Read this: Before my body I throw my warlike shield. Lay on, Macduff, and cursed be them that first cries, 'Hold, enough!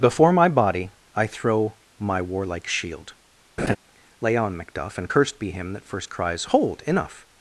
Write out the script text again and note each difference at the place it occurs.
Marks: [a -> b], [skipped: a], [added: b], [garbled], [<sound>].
Before my body I throw my warlike shield. [laugh] Lay on, Macduff, and cursed be [them -> him] that first cries, 'Hold, enough!